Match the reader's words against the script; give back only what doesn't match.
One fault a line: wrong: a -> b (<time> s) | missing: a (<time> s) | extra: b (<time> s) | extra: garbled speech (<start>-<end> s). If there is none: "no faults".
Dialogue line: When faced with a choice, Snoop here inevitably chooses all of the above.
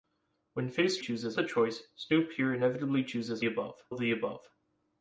wrong: with -> chooses (1.0 s)
wrong: all -> above (3.4 s)